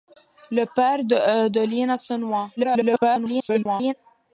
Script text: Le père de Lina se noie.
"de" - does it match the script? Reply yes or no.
yes